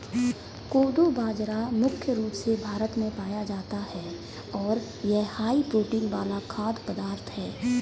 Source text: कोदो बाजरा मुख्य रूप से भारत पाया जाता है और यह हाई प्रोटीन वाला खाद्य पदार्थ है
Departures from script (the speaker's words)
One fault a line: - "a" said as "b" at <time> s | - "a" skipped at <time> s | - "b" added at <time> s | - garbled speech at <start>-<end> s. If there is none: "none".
- "में" added at 3.0 s